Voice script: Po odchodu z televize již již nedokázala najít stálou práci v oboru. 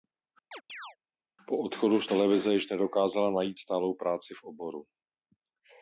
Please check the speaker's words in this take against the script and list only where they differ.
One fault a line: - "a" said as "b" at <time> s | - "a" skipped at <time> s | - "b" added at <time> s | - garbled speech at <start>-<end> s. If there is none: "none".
- "již" skipped at 2.7 s